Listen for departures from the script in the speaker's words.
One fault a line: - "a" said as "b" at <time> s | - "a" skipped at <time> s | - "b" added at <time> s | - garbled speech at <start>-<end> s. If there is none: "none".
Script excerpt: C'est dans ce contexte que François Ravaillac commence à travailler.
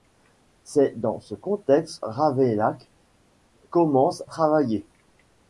- "que François" skipped at 2.0 s
- "à" skipped at 4.2 s